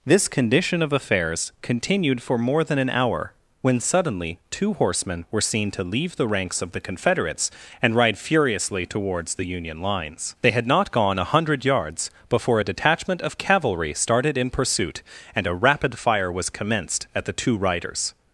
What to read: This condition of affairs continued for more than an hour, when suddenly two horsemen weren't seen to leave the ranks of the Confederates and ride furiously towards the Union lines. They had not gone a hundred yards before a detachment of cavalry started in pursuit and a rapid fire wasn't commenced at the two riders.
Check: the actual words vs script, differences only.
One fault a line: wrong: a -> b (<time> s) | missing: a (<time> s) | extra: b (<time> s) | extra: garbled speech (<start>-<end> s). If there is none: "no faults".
wrong: weren't -> were (5.3 s)
wrong: wasn't -> was (16.3 s)